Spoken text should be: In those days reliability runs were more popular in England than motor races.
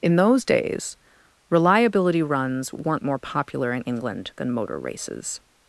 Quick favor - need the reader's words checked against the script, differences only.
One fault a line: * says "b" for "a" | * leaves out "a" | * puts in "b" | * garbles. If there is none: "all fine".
* says "weren't" for "were"